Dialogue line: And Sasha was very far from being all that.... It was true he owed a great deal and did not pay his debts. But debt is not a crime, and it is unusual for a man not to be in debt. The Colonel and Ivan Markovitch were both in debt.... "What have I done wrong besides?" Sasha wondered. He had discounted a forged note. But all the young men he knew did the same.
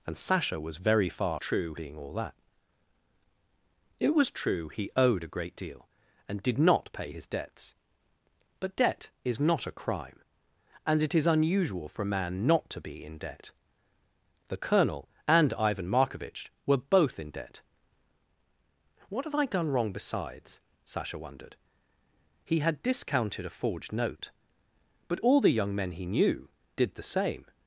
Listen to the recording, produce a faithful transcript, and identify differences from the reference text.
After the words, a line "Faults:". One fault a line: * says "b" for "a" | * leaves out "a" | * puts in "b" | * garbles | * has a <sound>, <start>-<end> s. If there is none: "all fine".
And Sasha was very far true being all that.... It was true he owed a great deal and did not pay his debts. But debt is not a crime, and it is unusual for a man not to be in debt. The Colonel and Ivan Markovitch were both in debt.... "What have I done wrong besides?" Sasha wondered. He had discounted a forged note. But all the young men he knew did the same.
Faults:
* says "true" for "from"